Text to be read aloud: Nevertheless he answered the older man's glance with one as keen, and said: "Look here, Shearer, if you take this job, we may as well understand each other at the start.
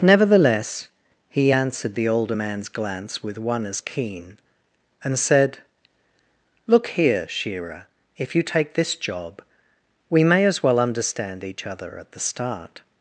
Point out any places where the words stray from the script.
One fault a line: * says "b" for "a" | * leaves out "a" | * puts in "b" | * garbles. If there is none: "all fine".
all fine